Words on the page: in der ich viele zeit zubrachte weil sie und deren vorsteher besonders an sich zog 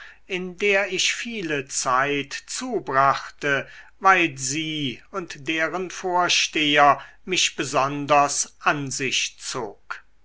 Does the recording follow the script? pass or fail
fail